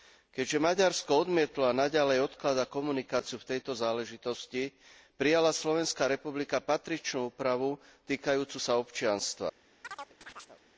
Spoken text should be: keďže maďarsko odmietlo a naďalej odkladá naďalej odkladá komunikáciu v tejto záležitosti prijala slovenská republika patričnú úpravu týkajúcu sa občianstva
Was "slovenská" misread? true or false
false